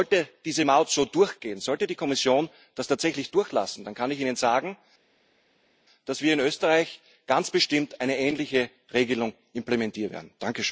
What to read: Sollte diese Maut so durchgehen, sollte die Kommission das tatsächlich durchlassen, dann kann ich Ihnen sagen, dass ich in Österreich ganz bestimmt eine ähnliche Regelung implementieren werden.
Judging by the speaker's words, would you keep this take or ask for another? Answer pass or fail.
fail